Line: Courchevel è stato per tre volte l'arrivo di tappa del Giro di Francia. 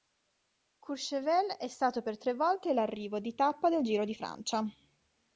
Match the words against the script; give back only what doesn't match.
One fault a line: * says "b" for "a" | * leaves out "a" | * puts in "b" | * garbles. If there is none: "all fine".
all fine